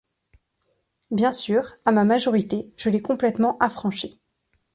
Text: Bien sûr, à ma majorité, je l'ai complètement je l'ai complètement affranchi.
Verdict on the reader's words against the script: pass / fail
fail